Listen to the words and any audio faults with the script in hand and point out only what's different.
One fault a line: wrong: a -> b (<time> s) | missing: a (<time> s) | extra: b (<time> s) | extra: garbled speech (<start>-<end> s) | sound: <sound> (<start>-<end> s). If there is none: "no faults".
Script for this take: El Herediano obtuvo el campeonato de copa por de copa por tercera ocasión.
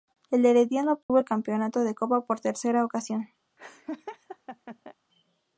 sound: dropout (1.0-1.1 s)
missing: de copa por (2.4 s)
sound: laugh (3.6-4.9 s)